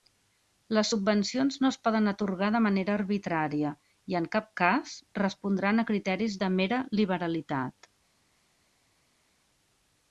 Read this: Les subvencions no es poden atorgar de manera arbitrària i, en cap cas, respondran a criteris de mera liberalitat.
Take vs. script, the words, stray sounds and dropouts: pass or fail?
pass